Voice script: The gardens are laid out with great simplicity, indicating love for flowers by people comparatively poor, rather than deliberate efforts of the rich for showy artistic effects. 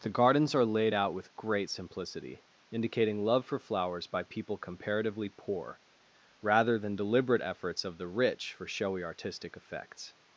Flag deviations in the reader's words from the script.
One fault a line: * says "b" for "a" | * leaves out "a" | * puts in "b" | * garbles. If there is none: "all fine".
all fine